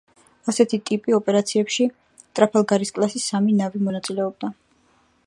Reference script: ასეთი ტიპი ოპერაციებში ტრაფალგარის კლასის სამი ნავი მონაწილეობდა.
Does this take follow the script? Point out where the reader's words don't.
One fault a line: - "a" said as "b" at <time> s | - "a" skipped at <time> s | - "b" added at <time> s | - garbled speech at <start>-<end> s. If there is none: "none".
none